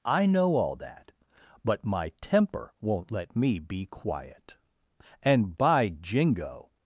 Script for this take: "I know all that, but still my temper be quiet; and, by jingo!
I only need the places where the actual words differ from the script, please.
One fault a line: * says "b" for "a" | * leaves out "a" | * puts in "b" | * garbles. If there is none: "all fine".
* leaves out "still"
* puts in "won't let me"